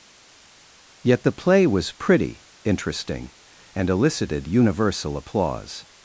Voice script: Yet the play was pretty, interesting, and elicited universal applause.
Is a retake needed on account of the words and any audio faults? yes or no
no